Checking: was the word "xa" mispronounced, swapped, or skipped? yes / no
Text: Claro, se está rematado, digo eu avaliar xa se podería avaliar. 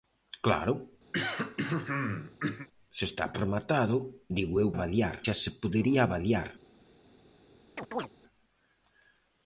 no